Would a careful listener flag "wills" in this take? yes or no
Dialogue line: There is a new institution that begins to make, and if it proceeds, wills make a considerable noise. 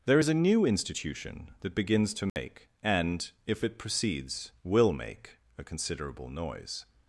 yes